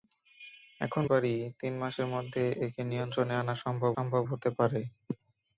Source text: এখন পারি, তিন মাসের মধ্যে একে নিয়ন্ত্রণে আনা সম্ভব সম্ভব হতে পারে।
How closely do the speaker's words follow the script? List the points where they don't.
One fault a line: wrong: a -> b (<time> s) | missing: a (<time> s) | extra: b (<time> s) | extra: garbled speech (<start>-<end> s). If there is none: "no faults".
no faults